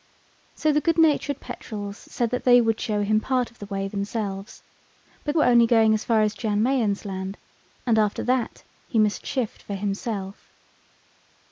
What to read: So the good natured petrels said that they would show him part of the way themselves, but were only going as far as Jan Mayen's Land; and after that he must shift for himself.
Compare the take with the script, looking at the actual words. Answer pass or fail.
pass